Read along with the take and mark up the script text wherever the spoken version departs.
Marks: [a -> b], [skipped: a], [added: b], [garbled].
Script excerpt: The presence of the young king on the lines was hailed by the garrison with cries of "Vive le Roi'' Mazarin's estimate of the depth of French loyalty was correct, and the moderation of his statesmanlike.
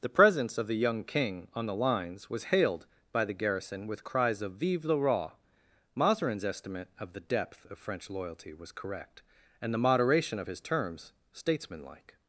The presence of the young king on the lines was hailed by the garrison with cries of "Vive le Roi'' Mazarin's estimate of the depth of French loyalty was correct, and the moderation of his [added: terms] statesmanlike.